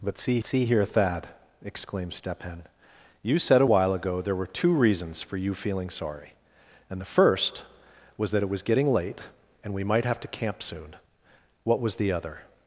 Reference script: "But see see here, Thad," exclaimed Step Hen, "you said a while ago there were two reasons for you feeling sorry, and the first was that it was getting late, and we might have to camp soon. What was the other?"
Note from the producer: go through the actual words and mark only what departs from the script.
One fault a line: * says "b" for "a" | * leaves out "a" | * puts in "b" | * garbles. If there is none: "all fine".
all fine